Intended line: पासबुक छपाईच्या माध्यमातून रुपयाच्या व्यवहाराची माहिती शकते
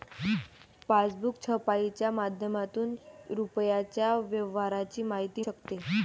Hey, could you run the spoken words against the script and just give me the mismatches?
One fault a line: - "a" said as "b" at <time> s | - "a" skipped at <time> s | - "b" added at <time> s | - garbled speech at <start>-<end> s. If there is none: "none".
none